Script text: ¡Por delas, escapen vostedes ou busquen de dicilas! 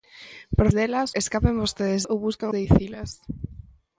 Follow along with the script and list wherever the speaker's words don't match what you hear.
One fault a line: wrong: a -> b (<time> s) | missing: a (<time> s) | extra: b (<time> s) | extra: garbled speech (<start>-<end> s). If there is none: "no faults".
no faults